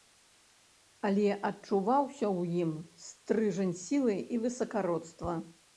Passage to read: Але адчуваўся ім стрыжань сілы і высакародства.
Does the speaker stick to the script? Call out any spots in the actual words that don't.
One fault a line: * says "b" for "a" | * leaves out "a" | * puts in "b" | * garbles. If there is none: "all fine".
* puts in "ў"